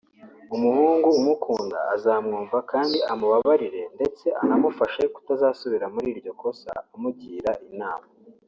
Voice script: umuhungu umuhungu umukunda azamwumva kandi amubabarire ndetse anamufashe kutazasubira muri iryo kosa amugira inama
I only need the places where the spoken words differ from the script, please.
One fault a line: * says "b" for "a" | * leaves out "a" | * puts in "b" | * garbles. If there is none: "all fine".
* leaves out "umuhungu"